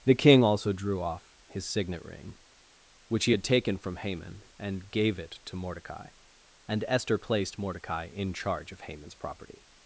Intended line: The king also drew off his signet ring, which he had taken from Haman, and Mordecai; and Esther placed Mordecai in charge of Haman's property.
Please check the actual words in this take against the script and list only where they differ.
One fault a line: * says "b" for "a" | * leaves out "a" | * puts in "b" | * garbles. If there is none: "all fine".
* puts in "gave it to"